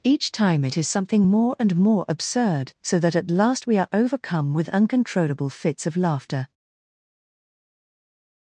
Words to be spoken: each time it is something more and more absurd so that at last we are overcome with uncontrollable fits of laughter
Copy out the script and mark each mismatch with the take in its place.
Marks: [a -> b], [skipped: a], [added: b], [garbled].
each time it is something more and more absurd so that at last we are overcome with uncontrollable fits of laughter